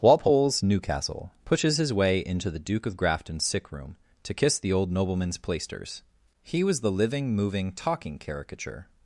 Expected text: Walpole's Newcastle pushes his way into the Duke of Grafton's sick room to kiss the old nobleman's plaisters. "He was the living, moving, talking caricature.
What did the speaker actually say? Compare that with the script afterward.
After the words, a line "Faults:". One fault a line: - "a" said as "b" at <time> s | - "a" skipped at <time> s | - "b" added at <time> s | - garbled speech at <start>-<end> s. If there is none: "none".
Walpole's Newcastle pushes his way into the Duke of Grafton's sick room to kiss the old nobleman's plaisters. "He was the living, moving, talking caricature.
Faults:
none